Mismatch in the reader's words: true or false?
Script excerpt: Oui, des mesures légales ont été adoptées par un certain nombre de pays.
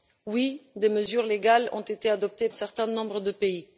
true